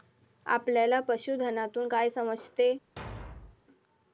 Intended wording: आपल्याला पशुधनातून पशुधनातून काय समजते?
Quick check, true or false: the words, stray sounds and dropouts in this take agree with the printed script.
false